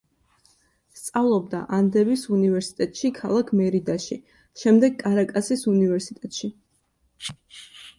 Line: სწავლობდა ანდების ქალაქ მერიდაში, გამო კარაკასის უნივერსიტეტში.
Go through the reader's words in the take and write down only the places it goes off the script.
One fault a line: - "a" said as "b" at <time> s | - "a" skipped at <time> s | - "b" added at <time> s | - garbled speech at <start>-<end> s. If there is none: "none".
- "უნივერსიტეტში" added at 2.4 s
- "გამო" said as "შემდეგ" at 4.6 s